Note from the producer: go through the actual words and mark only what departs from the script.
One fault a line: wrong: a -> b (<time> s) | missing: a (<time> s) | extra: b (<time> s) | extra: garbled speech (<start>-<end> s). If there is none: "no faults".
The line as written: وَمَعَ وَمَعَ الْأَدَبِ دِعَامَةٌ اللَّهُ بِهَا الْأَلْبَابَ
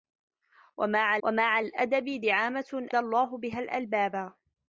no faults